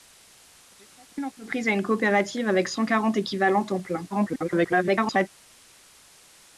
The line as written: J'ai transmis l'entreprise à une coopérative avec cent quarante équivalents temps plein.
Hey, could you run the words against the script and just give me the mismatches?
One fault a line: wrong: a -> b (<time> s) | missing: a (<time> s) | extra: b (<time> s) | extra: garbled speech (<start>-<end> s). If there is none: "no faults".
extra: garbled speech (4.1-5.3 s)